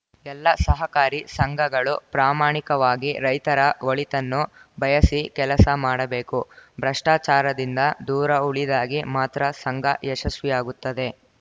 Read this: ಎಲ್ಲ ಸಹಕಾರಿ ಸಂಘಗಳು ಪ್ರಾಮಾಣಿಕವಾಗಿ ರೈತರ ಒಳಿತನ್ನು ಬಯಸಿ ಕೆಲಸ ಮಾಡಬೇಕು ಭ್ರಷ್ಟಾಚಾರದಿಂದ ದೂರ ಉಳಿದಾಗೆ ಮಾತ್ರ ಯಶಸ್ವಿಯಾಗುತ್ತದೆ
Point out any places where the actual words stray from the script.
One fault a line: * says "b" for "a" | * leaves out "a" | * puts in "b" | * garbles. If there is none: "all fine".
* puts in "ಸಂಘ"